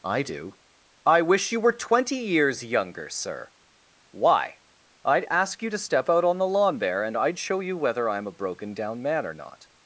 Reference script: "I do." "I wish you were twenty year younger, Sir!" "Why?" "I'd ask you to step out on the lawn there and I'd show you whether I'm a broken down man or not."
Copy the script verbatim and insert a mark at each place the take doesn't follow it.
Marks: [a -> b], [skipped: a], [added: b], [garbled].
"I do." "I wish you were twenty [year -> years] younger, Sir!" "Why?" "I'd ask you to step out on the lawn there and I'd show you whether I'm a broken down man or not."